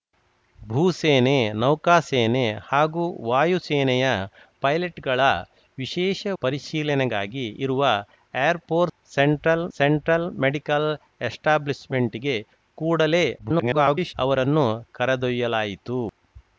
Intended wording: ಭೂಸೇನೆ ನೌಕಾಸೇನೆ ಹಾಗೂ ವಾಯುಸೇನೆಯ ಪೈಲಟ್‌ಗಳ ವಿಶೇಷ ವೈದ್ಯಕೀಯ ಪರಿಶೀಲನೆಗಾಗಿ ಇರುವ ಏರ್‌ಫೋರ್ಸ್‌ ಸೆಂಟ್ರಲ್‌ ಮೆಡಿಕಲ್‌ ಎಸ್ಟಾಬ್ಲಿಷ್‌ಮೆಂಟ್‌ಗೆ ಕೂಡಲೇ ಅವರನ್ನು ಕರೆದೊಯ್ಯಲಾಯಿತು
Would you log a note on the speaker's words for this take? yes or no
yes